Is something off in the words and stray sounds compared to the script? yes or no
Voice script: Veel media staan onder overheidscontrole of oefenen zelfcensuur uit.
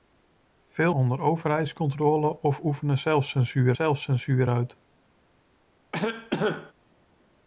yes